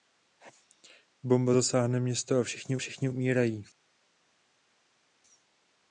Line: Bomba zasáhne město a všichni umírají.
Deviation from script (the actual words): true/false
true